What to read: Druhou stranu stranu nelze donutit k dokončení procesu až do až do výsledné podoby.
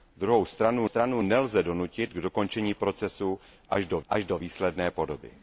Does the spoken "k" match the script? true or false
true